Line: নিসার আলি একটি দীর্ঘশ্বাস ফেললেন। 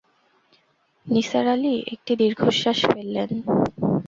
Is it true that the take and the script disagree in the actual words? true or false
false